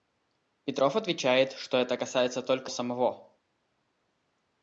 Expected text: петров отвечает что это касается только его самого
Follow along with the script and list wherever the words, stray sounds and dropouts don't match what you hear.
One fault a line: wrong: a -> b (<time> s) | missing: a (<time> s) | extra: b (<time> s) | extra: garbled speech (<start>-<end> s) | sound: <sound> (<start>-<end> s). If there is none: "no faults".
missing: его (2.7 s)